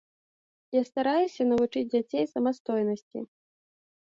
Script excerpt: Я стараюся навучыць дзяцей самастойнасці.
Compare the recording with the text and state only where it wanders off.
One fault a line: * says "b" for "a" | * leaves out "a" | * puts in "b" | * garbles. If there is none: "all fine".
all fine